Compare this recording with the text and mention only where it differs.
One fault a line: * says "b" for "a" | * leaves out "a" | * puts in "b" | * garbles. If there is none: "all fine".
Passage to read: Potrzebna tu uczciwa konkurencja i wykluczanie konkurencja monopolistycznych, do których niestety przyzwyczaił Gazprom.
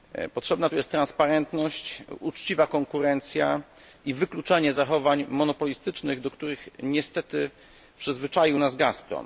* puts in "jest transparentność"
* says "zachowań" for "konkurencja"
* puts in "nas"